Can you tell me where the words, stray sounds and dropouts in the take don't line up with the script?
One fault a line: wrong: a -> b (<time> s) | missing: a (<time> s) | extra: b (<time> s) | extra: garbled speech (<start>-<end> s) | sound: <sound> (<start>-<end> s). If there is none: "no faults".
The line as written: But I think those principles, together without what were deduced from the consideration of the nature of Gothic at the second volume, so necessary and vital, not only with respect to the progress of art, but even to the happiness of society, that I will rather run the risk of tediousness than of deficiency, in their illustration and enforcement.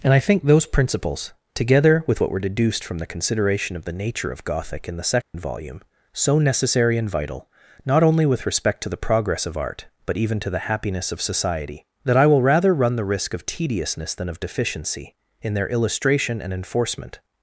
wrong: But -> And (0.0 s)
wrong: without -> with (2.1 s)
wrong: at -> in (4.9 s)
sound: dropout (5.2-5.3 s)